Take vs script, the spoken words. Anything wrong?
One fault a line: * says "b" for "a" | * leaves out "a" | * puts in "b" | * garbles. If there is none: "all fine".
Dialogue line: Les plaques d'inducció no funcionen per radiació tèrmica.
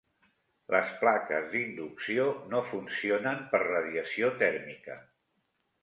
all fine